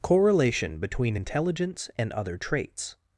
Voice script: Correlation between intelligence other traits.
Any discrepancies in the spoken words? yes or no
yes